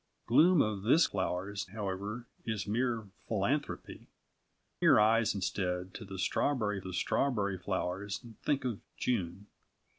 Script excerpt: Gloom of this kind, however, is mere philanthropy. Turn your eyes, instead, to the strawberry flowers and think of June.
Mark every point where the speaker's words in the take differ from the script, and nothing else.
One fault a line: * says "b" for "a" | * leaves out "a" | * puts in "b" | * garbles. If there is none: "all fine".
* says "flowers" for "kind"
* leaves out "Turn"
* puts in "the strawberry"